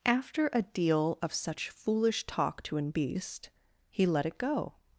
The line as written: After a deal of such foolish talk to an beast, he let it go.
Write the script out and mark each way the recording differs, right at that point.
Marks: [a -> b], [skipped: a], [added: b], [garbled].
After a deal of such foolish talk to an beast, he let it go.